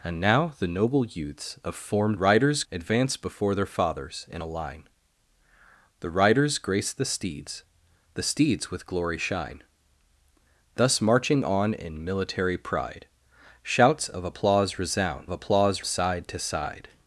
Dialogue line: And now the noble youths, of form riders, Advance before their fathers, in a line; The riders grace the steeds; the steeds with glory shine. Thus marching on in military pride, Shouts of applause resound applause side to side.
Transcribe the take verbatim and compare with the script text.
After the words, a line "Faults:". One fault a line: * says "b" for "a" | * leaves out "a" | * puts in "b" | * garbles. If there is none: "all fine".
And now the noble youths, of form riders, Advance before their fathers, in a line; The riders grace the steeds; the steeds with glory shine. Thus marching on in military pride, Shouts of applause resound applause side to side.
Faults:
all fine